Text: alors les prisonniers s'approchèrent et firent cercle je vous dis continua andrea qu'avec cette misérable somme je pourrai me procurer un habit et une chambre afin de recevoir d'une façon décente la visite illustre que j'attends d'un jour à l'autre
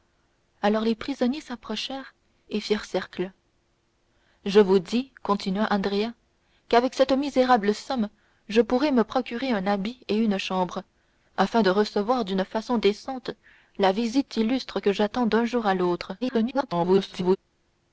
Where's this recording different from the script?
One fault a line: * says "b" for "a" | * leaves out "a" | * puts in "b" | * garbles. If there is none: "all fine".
* garbles